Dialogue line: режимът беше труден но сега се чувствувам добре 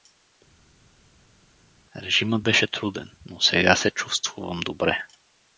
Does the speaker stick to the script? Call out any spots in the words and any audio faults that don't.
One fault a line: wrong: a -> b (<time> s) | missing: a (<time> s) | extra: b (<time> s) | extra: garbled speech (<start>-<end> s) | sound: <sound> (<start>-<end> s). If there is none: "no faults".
no faults